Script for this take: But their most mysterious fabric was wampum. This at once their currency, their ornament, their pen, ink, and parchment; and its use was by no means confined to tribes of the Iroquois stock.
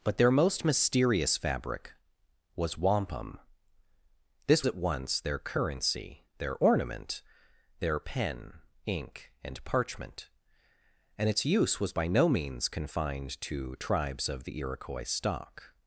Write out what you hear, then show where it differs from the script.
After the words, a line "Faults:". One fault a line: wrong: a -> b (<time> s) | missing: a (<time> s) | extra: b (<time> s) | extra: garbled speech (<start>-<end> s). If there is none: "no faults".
But their most mysterious fabric was wampum. This at once their currency, their ornament, their pen, ink, and parchment; and its use was by no means confined to tribes of the Iroquois stock.
Faults:
no faults